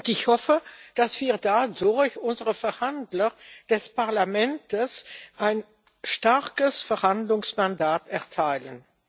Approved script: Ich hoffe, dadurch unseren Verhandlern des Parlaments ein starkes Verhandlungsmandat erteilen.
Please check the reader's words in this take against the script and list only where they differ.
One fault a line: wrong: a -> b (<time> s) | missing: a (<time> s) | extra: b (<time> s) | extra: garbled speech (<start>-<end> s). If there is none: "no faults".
extra: dass wir (0.9 s)